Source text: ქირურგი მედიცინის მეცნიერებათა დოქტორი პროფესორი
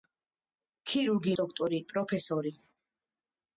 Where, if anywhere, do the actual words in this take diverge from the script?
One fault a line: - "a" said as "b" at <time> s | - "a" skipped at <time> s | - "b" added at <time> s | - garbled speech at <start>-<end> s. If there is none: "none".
- "მედიცინის მეცნიერებათა" skipped at 1.3 s